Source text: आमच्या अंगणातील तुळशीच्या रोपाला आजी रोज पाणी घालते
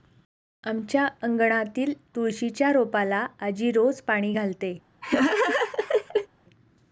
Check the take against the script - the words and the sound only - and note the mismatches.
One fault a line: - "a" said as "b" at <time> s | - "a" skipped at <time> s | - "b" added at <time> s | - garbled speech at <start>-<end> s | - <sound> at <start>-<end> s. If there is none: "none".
- laugh at 5.0-6.3 s